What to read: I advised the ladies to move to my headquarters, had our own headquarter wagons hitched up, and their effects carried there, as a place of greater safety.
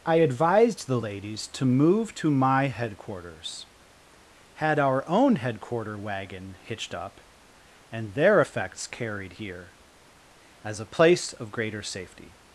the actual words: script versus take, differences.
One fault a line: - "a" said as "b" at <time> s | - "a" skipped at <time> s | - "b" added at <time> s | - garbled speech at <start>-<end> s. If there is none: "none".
- "wagons" said as "wagon" at 6.0 s
- "there" said as "here" at 9.3 s